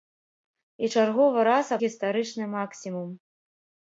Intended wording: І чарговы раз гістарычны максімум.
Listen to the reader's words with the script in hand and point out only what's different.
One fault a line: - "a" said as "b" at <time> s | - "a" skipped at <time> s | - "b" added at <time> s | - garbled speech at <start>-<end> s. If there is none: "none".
none